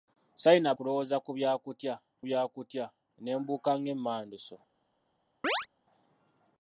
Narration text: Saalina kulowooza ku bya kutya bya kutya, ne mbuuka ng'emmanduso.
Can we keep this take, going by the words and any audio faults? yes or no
no